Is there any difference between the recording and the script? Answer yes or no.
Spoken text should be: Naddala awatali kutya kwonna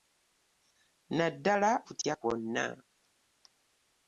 yes